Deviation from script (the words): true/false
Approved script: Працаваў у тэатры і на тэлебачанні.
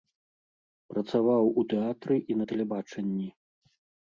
false